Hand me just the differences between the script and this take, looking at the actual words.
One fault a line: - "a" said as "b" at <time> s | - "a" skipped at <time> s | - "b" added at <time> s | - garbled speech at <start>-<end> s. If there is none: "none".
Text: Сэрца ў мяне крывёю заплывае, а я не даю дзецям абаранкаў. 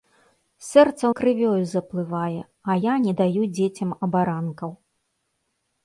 - "мяне" skipped at 1.1 s